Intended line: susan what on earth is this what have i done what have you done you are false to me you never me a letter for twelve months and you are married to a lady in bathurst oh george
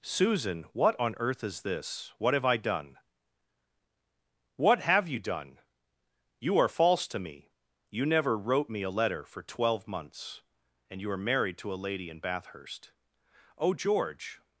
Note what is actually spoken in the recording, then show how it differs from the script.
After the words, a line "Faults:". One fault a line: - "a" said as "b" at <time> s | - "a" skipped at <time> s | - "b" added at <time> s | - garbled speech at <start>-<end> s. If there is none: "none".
susan what on earth is this what have i done what have you done you are false to me you never wrote me a letter for twelve months and you are married to a lady in bathurst oh george
Faults:
- "wrote" added at 8.3 s